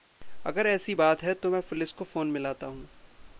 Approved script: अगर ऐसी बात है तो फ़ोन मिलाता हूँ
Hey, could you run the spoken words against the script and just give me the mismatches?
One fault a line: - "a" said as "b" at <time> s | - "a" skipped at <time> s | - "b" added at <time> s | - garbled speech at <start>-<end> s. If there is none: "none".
- "मैं पुलिस को" added at 1.5 s